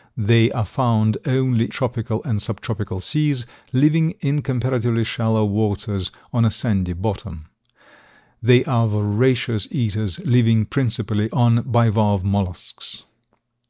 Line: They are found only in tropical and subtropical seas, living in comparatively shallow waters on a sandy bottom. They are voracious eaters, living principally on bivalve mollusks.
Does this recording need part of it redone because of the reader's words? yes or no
yes